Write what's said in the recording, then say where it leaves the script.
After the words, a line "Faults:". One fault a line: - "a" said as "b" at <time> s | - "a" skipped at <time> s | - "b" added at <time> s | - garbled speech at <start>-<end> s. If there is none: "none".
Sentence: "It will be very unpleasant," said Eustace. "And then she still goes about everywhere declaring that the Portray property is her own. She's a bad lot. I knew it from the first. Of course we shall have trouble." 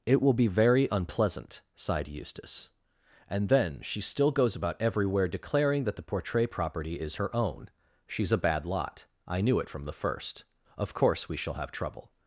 "It will be very unpleasant," sighed Eustace. "And then she still goes about everywhere declaring that the Portray property is her own. She's a bad lot. I knew it from the first. Of course we shall have trouble."
Faults:
- "said" said as "sighed" at 1.8 s